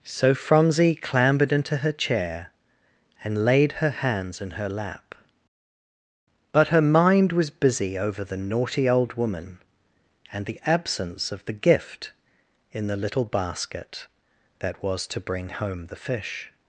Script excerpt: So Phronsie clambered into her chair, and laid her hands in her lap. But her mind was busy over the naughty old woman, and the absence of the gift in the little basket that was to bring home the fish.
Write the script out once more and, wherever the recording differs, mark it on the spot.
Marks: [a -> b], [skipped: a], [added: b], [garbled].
So Phronsie clambered into her chair, and laid her hands in her lap. But her mind was busy over the naughty old woman, and the absence of the gift in the little basket that was to bring home the fish.